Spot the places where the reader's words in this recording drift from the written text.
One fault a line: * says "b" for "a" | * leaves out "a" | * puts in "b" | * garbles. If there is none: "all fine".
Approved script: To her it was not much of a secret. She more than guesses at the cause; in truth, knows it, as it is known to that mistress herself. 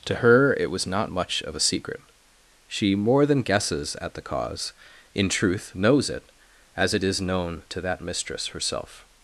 all fine